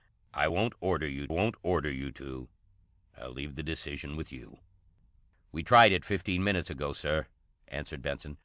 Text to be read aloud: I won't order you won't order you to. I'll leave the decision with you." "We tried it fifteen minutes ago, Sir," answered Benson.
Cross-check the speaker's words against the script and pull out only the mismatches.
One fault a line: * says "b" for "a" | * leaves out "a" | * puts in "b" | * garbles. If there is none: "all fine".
all fine